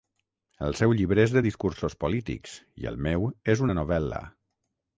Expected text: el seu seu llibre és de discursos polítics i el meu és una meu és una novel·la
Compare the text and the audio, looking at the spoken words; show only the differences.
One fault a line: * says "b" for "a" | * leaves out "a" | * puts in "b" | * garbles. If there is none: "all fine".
* leaves out "seu"
* leaves out "meu és una"